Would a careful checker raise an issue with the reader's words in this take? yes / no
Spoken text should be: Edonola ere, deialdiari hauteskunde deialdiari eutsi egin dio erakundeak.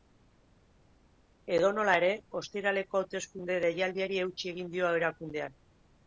yes